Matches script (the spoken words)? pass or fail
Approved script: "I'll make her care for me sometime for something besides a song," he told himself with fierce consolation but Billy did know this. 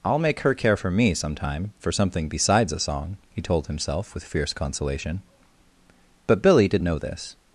pass